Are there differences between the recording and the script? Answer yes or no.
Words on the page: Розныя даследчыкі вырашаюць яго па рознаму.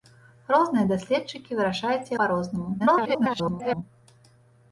yes